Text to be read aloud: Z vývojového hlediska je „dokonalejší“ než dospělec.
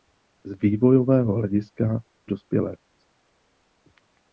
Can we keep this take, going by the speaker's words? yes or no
no